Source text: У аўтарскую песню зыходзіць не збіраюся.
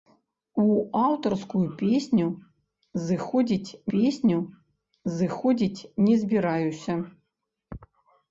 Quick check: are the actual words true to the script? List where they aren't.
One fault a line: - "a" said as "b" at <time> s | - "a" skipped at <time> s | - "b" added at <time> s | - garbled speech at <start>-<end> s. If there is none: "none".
- "песню зыходзіць" added at 3.9 s